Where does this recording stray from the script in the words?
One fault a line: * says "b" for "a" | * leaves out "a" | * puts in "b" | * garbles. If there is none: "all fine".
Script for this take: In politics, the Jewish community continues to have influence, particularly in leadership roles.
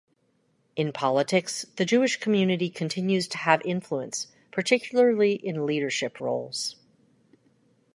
all fine